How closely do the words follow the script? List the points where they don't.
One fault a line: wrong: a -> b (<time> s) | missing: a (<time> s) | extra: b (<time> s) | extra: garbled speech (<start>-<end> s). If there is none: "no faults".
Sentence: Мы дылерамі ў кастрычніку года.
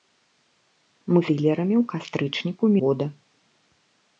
no faults